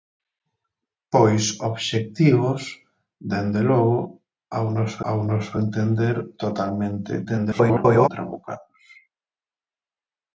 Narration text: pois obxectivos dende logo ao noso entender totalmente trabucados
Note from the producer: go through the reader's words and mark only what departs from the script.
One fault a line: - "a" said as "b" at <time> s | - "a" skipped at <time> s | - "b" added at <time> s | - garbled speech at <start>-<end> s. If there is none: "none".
- "ao noso" added at 5.1 s
- garbled speech at 7.2-8.1 s